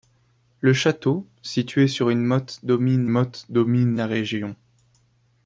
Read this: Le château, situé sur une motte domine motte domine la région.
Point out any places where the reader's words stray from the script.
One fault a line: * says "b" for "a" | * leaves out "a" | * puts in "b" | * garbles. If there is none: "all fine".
all fine